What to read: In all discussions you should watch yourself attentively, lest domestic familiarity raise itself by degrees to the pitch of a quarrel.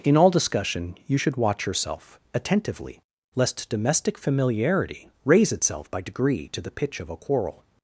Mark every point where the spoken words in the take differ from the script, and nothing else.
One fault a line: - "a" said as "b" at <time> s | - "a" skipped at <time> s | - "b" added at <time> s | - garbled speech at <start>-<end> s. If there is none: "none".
- "discussions" said as "discussion" at 0.3 s
- "degrees" said as "degree" at 6.0 s